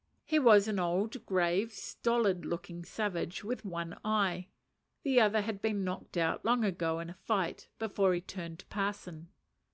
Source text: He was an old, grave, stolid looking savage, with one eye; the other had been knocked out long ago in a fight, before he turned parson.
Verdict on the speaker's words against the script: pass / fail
pass